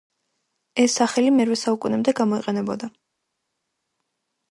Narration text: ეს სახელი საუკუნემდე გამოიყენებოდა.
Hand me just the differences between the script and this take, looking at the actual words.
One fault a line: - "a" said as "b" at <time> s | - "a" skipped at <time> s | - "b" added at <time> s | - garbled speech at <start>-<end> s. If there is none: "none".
- "მერვე" added at 1.4 s